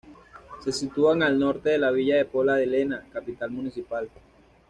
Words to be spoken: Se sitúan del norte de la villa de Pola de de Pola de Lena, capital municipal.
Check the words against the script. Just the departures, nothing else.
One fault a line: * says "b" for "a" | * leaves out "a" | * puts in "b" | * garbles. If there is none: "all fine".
* says "al" for "del"
* leaves out "de Pola de"